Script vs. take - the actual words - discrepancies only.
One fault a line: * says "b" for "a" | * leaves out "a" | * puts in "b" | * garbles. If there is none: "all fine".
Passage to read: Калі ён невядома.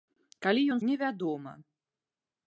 all fine